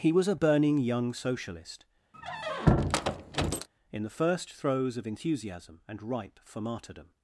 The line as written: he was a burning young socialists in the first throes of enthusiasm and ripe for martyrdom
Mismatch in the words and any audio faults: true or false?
true